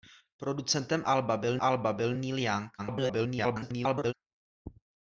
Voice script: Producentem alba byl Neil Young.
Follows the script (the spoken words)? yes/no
no